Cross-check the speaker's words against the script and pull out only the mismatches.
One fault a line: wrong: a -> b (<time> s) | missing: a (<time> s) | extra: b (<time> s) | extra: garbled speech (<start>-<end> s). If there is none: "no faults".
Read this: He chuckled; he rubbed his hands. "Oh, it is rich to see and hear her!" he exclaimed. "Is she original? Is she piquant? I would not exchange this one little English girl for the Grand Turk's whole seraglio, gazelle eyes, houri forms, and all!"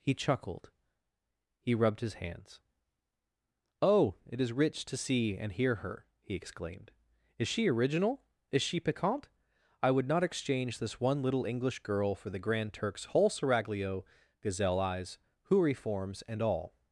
no faults